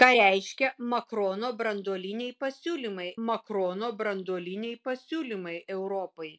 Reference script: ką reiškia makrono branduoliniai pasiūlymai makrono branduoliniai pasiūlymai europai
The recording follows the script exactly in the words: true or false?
true